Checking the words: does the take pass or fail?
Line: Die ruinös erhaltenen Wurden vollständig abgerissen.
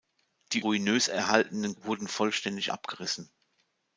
pass